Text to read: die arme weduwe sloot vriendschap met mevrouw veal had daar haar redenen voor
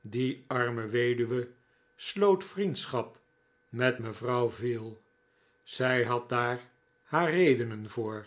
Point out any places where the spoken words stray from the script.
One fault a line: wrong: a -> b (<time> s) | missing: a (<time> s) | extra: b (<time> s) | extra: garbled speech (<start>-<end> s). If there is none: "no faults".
extra: zij (5.6 s)